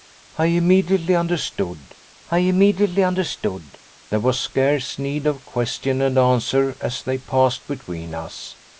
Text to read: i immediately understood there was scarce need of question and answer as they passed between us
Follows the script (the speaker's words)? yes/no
no